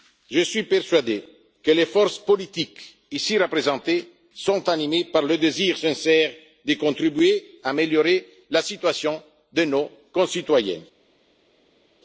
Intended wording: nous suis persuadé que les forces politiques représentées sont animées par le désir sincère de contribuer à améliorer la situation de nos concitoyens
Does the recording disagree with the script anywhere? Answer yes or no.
yes